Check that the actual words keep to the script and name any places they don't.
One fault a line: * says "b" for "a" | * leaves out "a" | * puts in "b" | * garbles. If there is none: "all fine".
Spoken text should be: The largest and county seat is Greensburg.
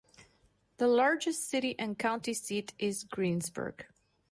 * puts in "city"